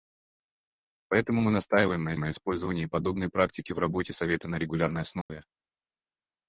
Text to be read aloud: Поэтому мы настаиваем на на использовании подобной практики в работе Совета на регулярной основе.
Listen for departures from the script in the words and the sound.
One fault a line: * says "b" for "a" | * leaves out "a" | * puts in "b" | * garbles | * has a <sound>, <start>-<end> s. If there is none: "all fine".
* has a dropout, 5.2-5.3 s